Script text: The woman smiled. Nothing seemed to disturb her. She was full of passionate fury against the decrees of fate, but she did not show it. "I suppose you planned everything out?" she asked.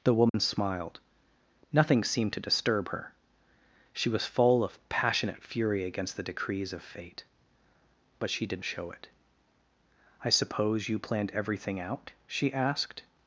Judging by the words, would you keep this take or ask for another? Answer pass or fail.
fail